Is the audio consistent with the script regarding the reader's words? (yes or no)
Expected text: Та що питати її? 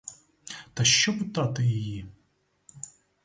yes